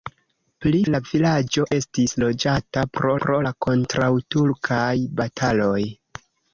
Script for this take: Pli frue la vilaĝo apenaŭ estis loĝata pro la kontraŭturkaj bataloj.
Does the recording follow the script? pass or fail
fail